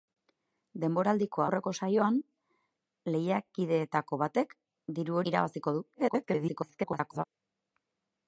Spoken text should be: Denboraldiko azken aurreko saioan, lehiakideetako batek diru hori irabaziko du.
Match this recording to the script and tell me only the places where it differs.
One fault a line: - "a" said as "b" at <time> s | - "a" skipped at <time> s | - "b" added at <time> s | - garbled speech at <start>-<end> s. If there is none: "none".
- "azken" skipped at 1.4 s
- "hori" skipped at 5.2 s
- garbled speech at 5.9-7.2 s